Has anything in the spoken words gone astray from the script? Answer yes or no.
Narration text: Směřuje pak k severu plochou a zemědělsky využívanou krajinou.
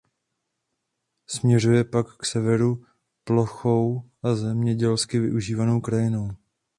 no